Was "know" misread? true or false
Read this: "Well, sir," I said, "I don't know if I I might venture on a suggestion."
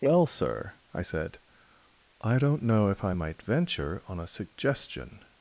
false